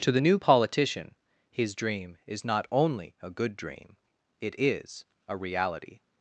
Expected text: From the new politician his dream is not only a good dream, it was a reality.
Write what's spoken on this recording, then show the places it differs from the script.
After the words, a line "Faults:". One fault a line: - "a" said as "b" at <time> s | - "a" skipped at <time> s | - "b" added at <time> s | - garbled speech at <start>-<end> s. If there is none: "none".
To the new politician his dream is not only a good dream, it is a reality.
Faults:
- "From" said as "To" at 0.0 s
- "was" said as "is" at 4.6 s